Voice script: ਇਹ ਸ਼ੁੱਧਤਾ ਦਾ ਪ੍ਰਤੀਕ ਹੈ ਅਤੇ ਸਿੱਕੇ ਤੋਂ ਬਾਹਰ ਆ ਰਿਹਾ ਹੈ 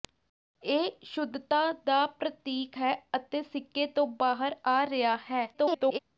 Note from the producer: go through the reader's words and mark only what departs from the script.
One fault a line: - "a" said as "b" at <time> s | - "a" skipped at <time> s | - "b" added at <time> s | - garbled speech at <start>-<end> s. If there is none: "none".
- garbled speech at 5.5-6.0 s